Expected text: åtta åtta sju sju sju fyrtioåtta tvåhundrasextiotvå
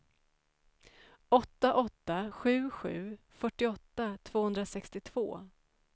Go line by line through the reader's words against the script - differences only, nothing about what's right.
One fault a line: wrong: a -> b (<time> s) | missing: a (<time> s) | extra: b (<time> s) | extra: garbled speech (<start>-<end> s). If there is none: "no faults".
missing: sju (3.2 s)